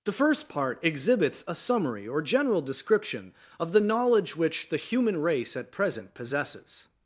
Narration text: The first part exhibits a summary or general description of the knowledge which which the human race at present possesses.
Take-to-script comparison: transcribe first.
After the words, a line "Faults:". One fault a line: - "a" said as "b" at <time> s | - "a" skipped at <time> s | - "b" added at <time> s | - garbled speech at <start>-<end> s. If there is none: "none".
The first part exhibits a summary or general description of the knowledge which the human race at present possesses.
Faults:
- "which" skipped at 4.7 s